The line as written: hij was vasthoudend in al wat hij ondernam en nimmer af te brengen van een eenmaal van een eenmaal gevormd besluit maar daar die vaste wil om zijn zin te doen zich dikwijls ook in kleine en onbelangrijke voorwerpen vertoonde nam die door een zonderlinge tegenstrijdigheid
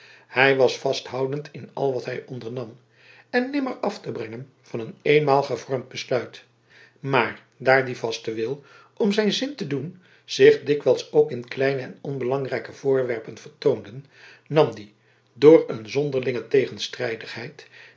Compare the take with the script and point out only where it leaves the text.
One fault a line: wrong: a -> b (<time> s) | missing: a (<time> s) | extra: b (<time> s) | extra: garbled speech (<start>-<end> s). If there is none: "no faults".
missing: van een eenmaal (5.4 s)